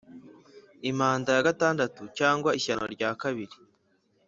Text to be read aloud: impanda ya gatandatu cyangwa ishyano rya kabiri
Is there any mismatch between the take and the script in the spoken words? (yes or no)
no